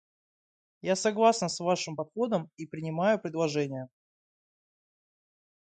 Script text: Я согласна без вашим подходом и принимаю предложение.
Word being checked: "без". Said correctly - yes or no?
no